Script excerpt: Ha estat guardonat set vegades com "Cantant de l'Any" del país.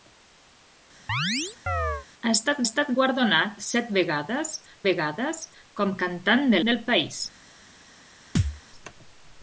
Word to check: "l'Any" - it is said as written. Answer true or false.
false